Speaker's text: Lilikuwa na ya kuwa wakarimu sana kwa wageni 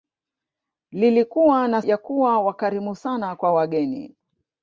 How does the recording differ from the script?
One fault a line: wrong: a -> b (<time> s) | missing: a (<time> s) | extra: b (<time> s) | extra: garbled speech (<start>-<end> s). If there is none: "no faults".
no faults